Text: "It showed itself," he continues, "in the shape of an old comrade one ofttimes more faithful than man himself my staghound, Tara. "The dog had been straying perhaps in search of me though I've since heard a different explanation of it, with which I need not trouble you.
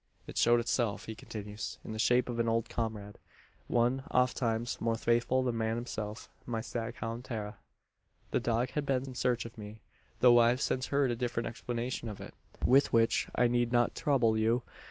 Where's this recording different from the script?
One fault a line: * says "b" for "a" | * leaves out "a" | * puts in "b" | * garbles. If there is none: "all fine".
* leaves out "straying perhaps"